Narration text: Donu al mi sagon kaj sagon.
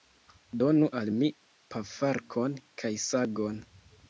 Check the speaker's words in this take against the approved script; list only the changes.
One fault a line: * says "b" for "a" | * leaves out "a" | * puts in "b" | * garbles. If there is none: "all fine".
* says "pafarkon" for "sagon"